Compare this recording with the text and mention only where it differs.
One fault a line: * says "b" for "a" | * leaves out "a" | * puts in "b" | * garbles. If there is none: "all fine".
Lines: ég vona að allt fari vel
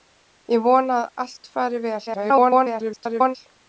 * garbles